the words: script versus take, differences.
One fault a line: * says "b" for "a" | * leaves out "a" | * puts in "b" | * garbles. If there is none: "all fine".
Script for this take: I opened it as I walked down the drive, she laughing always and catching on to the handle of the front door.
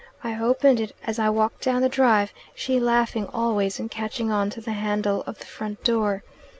all fine